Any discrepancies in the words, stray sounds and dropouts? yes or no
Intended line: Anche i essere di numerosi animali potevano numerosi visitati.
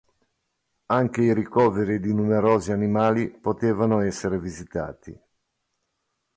yes